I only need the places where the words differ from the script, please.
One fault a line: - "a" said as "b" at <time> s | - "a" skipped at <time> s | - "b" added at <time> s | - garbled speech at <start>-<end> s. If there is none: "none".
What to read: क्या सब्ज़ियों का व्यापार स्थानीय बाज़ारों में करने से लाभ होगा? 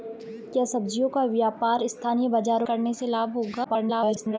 - "में" skipped at 2.7 s
- garbled speech at 3.6-4.4 s